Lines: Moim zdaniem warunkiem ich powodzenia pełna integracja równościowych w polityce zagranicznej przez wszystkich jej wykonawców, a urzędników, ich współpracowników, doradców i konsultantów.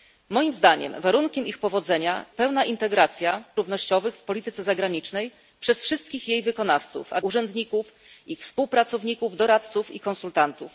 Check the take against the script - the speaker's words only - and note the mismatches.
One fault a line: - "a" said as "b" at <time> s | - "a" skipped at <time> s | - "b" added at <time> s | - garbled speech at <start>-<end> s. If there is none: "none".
none